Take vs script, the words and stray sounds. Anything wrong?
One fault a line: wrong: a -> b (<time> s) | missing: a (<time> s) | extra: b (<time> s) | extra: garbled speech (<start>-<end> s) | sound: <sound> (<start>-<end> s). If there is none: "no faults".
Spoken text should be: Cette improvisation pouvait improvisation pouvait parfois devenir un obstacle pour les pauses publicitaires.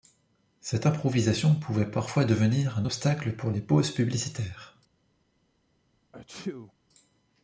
missing: improvisation pouvait (1.9 s)
sound: sneeze (6.1-6.7 s)